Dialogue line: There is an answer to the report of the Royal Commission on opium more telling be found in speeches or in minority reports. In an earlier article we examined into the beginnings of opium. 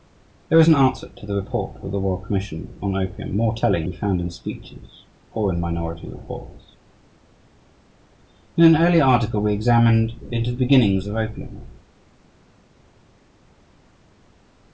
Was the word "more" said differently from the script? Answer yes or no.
no